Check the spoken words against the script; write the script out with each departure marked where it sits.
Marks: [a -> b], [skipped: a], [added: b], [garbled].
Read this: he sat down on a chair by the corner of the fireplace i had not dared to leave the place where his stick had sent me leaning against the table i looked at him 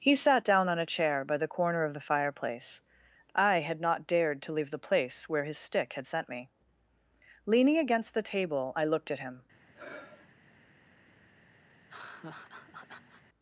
he sat down on a chair by the corner of the fireplace i had not dared to leave the place where his stick had sent me leaning against the table i looked at him